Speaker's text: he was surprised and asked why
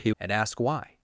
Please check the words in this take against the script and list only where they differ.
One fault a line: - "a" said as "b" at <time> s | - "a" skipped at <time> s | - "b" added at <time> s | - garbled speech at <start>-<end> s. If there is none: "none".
- "was surprised" skipped at 0.1 s